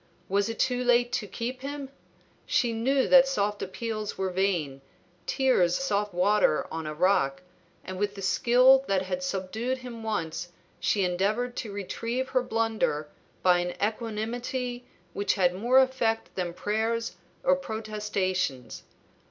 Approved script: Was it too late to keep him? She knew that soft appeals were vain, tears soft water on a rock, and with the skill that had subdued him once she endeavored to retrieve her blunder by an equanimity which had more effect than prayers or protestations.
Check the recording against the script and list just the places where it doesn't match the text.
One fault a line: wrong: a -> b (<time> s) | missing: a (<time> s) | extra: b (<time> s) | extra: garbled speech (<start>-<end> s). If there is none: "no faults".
no faults